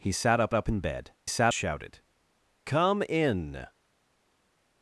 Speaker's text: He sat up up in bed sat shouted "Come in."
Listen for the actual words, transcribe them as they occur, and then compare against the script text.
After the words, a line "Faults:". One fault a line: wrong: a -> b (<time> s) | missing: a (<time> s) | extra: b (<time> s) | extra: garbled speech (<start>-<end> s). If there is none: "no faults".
He sat up up in bed sat shouted "Come in."
Faults:
no faults